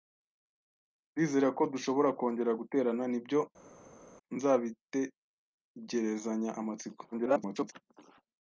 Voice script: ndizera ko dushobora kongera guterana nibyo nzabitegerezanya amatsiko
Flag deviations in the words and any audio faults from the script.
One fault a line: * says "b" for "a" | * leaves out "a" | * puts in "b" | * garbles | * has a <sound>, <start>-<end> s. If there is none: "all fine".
* garbles